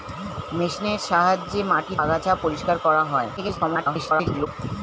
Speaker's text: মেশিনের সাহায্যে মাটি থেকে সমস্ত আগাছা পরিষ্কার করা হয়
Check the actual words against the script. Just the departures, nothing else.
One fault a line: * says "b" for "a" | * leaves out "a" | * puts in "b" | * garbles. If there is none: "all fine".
* leaves out "থেকে সমস্ত"
* garbles